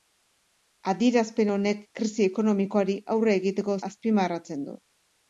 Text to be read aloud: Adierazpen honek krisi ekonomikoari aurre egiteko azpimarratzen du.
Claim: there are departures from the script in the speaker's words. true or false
false